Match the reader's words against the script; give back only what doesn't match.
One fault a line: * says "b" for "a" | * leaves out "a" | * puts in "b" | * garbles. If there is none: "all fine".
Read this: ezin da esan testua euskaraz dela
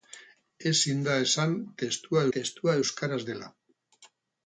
* puts in "testua"